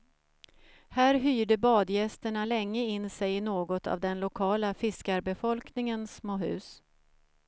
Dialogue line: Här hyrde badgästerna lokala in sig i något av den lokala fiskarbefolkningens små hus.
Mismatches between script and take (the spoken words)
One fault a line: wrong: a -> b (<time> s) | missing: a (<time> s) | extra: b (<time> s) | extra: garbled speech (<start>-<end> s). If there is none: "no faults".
wrong: lokala -> länge (2.4 s)